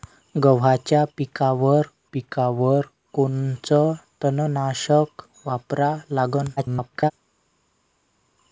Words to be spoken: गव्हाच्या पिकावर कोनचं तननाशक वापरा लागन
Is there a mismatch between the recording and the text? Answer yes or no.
yes